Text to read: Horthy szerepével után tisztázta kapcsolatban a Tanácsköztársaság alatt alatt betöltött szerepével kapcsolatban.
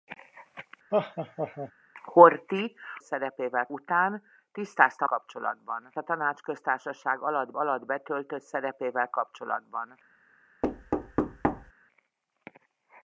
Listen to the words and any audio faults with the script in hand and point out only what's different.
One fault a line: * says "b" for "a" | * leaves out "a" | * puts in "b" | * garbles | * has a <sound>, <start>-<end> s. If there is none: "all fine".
* has a laugh, 0.9-1.7 s
* has a thud, 10.6-11.7 s